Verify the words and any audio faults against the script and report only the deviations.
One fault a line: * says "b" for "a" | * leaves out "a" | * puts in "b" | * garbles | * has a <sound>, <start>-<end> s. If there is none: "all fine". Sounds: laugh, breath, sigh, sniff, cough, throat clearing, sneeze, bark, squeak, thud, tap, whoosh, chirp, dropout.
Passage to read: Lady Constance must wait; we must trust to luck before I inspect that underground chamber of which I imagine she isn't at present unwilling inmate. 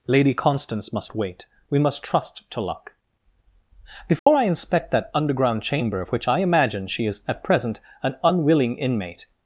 * has a dropout, 4.2-4.3 s
* says "is" for "isn't"
* puts in "an"